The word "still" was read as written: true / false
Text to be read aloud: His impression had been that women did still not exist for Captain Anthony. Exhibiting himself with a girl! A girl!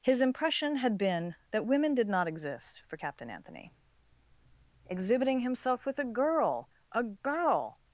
false